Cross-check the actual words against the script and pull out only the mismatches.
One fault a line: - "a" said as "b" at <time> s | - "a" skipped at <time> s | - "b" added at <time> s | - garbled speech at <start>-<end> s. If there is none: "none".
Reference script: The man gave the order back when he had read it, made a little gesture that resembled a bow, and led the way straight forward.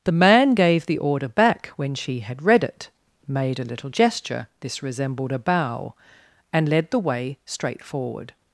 - "he" said as "she" at 1.9 s
- "that" said as "this" at 4.6 s